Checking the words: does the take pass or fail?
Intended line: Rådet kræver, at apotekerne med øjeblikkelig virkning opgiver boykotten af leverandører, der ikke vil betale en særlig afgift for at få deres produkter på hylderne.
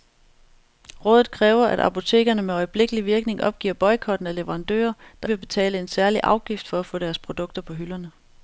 fail